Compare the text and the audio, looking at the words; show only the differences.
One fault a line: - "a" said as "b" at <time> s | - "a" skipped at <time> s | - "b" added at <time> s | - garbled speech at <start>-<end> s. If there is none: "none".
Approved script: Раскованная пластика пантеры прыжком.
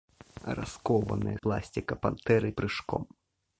none